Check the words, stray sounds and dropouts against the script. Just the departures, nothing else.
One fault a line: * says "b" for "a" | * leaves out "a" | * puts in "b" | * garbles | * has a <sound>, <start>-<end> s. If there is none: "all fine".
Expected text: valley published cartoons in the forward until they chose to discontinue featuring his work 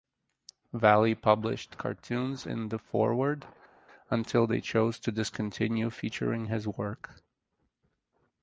all fine